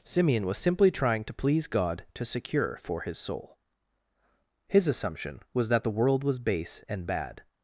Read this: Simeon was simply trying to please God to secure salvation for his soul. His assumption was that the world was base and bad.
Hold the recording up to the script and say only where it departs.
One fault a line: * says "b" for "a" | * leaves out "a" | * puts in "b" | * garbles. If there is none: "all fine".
* leaves out "salvation"